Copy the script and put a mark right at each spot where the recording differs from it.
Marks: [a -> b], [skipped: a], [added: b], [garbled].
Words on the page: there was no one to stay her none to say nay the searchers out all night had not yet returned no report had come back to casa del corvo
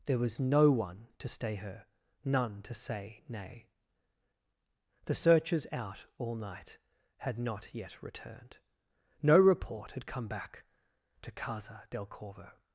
there was no one to stay her none to say nay the searchers out all night had not yet returned no report had come back to casa del corvo